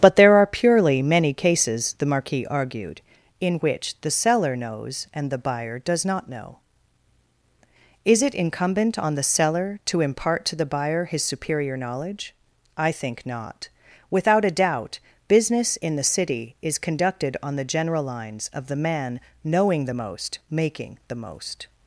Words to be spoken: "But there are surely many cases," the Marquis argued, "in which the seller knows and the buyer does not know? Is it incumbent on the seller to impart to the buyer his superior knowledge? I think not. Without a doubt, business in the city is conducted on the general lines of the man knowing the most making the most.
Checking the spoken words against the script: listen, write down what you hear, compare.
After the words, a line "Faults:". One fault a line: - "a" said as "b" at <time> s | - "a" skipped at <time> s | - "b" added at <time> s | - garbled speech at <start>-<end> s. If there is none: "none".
"But there are purely many cases," the Marquis argued, "in which the seller knows and the buyer does not know? Is it incumbent on the seller to impart to the buyer his superior knowledge? I think not. Without a doubt, business in the city is conducted on the general lines of the man knowing the most making the most.
Faults:
- "surely" said as "purely" at 0.5 s